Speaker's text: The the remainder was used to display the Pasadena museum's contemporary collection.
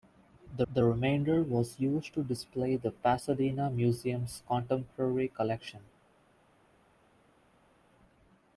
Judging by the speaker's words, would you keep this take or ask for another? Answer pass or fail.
pass